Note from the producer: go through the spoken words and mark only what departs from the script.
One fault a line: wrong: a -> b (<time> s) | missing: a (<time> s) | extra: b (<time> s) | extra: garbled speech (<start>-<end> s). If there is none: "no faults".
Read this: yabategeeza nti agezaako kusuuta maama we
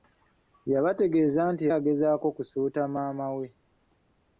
no faults